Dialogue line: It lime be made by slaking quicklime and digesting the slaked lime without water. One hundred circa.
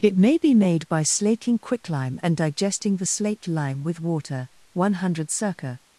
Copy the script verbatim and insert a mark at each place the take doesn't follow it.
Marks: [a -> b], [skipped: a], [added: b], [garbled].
It [lime -> may] be made by slaking quicklime and digesting the slaked lime [without -> with] water. One hundred circa.